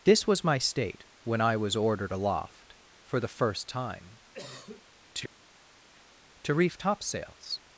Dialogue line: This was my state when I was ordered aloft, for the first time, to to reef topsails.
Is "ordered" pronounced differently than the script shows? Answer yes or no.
no